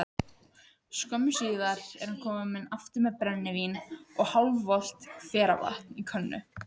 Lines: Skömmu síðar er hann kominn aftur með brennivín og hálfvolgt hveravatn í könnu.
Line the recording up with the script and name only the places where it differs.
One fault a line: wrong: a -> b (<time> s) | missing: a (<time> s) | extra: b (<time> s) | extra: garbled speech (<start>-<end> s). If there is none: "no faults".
no faults